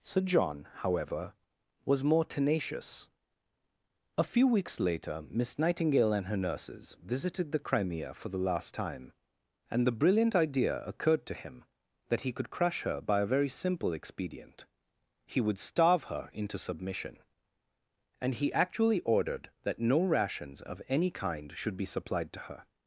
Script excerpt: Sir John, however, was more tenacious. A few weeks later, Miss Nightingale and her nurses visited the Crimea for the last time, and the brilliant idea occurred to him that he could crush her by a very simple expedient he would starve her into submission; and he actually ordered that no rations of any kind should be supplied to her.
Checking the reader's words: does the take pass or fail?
pass